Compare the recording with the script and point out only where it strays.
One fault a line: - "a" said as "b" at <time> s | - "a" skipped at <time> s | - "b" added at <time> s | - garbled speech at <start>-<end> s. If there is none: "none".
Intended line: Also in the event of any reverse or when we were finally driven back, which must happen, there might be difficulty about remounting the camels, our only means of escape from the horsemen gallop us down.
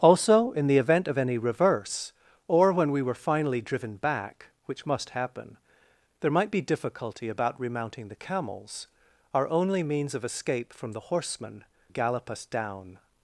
none